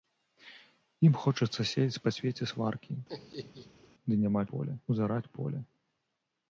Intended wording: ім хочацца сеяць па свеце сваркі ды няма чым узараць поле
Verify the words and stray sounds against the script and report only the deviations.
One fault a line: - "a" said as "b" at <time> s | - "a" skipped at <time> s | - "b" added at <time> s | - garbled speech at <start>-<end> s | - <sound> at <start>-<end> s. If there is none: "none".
- laugh at 3.1-3.9 s
- "чым" said as "поле" at 4.5 s